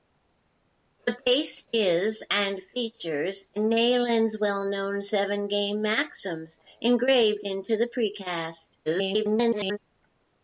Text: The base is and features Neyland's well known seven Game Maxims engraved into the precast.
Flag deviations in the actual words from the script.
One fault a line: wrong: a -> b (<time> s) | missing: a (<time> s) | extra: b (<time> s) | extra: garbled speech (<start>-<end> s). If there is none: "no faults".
extra: garbled speech (8.9-9.8 s)